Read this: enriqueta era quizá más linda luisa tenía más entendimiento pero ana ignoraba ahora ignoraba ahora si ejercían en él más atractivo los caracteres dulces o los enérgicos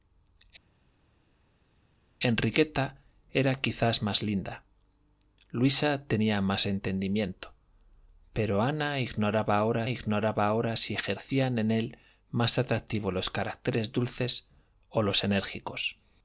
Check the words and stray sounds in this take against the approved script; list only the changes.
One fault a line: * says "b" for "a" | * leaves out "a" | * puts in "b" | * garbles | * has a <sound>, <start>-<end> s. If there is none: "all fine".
all fine